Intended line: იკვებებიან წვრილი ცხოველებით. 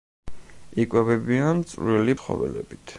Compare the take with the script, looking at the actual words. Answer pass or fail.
pass